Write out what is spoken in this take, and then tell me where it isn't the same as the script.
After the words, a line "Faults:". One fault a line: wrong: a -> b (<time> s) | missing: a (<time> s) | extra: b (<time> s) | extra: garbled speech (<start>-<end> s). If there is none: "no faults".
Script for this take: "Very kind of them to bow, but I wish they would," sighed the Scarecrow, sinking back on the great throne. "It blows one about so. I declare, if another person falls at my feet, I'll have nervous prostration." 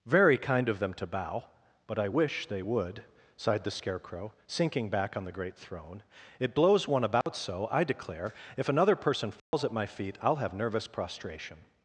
"Very kind of them to bow, but I wish they would," sighed the Scarecrow, sinking back on the great throne. "It blows one about so. I declare, if another person falls at my feet, I'll have nervous prostration."
Faults:
no faults